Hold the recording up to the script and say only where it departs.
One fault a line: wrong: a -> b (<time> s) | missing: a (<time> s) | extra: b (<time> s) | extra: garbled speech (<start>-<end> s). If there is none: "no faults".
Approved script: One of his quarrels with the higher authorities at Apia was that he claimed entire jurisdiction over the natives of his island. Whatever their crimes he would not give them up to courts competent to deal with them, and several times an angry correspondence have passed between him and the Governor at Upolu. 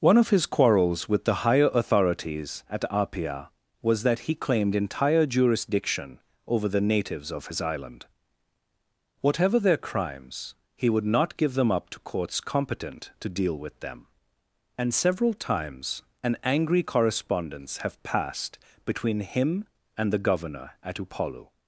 no faults